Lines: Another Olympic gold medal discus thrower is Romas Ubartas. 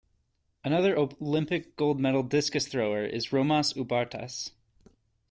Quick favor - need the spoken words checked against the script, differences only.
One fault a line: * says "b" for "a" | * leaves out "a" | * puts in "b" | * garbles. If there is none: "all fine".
all fine